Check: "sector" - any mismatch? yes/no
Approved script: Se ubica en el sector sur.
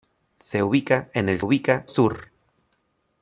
yes